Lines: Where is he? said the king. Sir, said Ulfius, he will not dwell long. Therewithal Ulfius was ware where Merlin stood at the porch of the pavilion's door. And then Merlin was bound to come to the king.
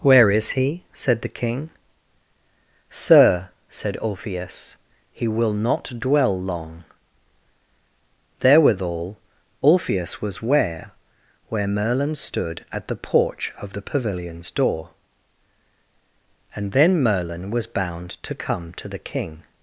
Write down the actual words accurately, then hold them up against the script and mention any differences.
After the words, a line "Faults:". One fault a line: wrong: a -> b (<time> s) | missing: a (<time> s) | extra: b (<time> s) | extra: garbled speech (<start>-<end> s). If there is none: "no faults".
Where is he? said the king. Sir, said Ulfius, he will not dwell long. Therewithal Ulfius was ware where Merlin stood at the porch of the pavilion's door. And then Merlin was bound to come to the king.
Faults:
no faults